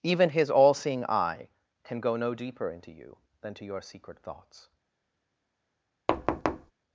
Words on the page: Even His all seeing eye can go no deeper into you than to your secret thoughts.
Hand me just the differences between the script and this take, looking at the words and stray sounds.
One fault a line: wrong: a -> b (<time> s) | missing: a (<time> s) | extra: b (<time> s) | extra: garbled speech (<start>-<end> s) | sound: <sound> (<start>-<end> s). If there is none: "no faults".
sound: thud (6.1-6.7 s)